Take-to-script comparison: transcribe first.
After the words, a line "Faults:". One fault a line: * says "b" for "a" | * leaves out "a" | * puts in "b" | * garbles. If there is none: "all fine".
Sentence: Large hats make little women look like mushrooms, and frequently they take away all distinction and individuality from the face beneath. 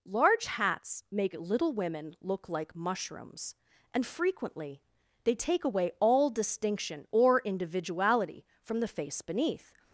Large hats make little women look like mushrooms, and frequently they take away all distinction or individuality from the face beneath.
Faults:
* says "or" for "and"